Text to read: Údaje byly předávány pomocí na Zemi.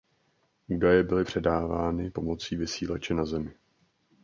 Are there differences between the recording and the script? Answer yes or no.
yes